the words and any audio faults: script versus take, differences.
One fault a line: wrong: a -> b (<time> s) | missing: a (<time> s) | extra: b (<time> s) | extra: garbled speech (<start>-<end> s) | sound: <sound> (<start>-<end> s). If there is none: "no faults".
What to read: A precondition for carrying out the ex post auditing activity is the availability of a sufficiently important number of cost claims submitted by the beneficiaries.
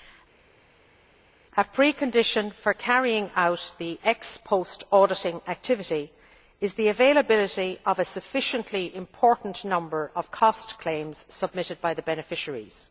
no faults